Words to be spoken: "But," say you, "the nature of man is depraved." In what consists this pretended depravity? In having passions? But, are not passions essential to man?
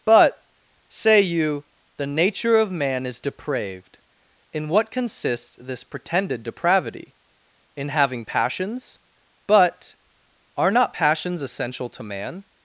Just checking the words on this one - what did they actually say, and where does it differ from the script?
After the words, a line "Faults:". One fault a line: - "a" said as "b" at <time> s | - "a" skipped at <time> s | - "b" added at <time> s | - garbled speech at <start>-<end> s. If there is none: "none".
"But," say you, "the nature of man is depraved." In what consists this pretended depravity? In having passions? But, are not passions essential to man?
Faults:
none